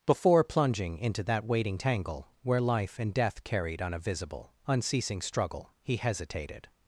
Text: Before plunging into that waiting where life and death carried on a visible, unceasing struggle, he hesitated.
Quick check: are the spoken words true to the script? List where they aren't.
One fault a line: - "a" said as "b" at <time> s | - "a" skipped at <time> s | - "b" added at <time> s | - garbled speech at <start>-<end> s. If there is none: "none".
- "tangle" added at 1.7 s